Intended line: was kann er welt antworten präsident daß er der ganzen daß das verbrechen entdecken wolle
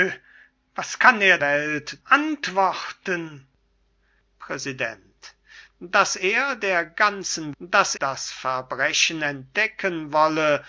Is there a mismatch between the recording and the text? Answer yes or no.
no